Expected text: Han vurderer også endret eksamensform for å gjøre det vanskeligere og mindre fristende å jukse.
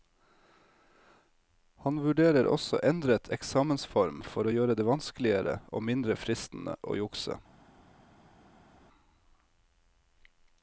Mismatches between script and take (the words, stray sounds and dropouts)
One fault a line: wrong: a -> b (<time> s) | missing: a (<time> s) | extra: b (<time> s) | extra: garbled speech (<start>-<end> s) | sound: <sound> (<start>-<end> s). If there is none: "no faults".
no faults